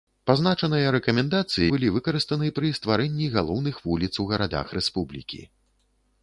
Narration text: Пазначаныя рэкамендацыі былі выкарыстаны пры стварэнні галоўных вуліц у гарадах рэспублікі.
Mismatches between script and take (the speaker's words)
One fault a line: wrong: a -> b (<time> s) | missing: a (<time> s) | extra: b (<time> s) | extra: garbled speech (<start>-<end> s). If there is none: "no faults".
no faults